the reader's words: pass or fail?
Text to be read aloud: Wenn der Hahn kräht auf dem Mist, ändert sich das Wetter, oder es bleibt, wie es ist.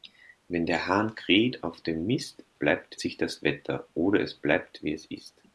fail